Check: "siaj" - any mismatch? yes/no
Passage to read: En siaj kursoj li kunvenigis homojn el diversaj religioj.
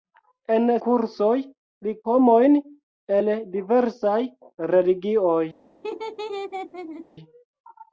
yes